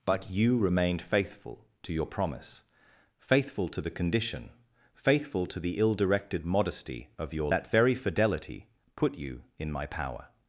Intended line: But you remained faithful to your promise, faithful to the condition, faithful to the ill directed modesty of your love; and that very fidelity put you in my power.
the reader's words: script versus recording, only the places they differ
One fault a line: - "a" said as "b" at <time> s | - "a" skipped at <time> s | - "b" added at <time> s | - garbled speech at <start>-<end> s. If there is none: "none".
- "love and" skipped at 7.5 s